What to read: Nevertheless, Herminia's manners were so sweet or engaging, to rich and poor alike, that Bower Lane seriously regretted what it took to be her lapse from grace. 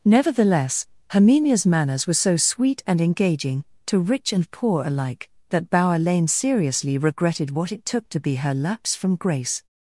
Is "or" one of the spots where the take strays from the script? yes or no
yes